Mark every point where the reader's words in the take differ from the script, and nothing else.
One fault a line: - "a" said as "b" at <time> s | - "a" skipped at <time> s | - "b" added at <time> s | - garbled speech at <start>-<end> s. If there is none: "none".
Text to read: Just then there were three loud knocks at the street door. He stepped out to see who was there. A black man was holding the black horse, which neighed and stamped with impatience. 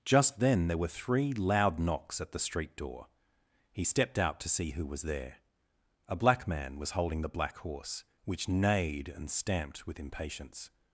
none